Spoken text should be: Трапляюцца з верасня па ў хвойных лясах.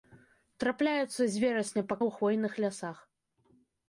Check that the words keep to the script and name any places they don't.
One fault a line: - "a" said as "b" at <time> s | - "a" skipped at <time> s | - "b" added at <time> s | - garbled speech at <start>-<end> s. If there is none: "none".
none